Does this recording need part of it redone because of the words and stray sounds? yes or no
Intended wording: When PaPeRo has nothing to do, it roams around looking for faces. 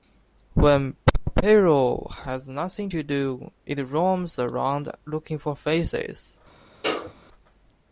yes